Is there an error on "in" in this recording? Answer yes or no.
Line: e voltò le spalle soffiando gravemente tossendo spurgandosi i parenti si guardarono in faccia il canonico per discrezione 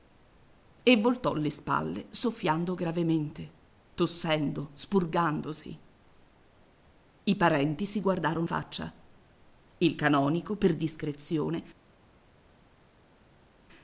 yes